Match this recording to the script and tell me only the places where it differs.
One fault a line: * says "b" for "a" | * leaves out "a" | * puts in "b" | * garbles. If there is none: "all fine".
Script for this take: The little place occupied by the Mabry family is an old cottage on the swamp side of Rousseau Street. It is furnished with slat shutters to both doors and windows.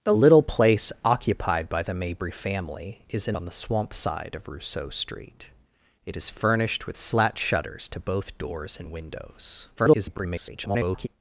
* leaves out "old cottage"
* garbles